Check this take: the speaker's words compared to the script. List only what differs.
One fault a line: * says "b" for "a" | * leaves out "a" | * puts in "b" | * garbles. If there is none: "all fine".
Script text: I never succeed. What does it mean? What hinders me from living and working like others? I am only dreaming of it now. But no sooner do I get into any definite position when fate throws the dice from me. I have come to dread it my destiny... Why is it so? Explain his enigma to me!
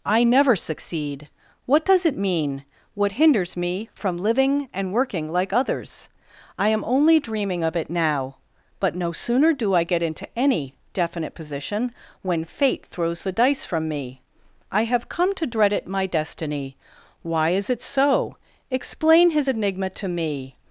all fine